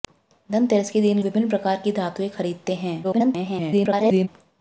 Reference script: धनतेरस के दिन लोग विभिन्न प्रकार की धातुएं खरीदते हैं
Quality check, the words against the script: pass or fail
fail